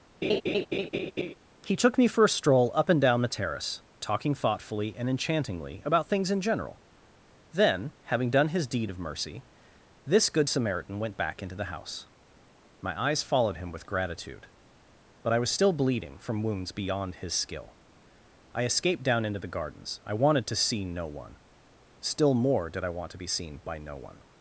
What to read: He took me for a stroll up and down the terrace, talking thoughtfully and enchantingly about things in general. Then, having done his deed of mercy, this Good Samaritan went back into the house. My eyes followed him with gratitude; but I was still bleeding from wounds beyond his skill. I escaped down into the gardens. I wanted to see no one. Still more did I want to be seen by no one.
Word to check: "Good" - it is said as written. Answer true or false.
true